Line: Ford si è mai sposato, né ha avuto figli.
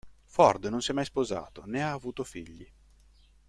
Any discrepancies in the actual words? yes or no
yes